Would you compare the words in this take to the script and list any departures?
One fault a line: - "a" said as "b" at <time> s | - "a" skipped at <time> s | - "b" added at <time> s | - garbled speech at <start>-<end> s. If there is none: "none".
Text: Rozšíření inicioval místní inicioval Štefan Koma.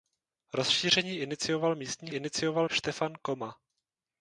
none